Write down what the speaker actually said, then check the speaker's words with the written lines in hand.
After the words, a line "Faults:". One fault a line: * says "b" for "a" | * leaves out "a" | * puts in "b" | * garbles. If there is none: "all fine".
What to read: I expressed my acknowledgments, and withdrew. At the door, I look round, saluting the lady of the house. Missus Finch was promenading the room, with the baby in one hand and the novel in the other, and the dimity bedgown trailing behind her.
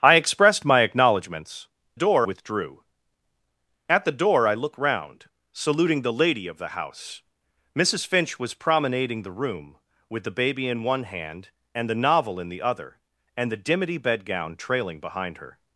I expressed my acknowledgments, door withdrew. At the door, I look round, saluting the lady of the house. Missus Finch was promenading the room, with the baby in one hand and the novel in the other, and the dimity bedgown trailing behind her.
Faults:
* says "door" for "and"